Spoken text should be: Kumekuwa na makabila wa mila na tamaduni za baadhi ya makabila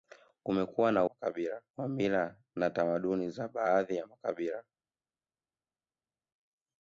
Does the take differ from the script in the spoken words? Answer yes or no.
no